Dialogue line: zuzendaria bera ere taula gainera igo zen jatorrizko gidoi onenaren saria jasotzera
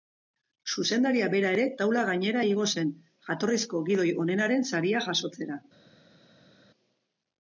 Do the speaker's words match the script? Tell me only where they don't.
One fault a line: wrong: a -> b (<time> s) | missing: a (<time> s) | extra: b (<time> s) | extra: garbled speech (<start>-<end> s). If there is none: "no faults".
no faults